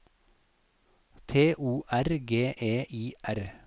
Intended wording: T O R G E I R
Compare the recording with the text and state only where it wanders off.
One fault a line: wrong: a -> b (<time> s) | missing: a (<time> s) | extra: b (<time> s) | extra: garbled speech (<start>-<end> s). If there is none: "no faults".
no faults